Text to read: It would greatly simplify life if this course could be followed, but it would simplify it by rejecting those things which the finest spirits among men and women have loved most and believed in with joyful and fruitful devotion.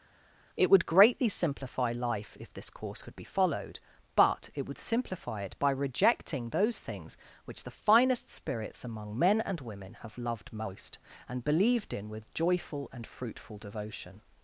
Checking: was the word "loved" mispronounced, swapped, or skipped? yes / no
no